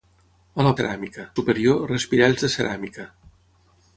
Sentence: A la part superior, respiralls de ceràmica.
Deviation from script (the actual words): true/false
true